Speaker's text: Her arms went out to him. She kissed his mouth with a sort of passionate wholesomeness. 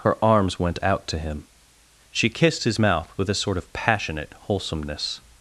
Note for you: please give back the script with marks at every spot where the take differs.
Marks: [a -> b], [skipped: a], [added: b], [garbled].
Her arms went out to him. She kissed his mouth with a sort of passionate wholesomeness.